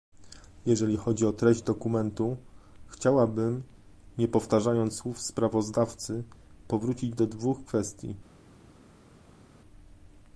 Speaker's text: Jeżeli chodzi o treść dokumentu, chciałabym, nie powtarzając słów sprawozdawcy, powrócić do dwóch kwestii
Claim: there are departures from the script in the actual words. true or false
false